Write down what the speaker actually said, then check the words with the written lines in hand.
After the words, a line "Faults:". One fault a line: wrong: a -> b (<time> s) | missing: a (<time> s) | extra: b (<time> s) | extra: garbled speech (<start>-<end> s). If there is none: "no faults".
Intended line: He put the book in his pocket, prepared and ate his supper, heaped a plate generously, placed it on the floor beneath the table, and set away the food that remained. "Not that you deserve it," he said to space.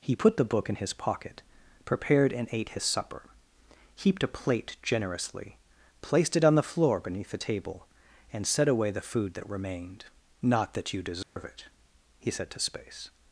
He put the book in his pocket, prepared and ate his supper, heaped a plate generously, placed it on the floor beneath the table, and set away the food that remained. "Not that you deserve it," he said to space.
Faults:
no faults